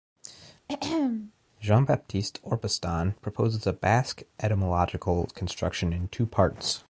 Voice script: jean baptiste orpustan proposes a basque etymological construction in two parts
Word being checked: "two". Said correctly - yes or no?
yes